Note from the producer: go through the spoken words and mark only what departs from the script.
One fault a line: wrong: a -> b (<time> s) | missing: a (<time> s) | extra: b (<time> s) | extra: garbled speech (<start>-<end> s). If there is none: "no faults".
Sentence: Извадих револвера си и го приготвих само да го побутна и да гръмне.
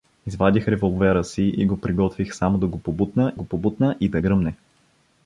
extra: го побутна (3.3 s)